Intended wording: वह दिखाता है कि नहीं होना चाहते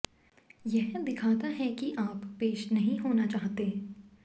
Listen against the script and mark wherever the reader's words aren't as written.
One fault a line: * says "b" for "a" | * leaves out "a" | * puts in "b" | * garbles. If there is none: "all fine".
* says "यह" for "वह"
* puts in "आप पेश"